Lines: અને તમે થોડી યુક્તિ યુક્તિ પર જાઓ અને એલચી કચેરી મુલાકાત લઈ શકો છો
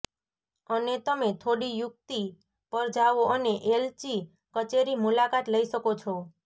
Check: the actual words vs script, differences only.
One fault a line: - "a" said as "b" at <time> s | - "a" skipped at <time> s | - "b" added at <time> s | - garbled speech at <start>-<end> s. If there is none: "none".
- "યુક્તિ" skipped at 2.2 s